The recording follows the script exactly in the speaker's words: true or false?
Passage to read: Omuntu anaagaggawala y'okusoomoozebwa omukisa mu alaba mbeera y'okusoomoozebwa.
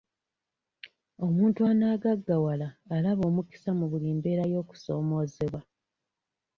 false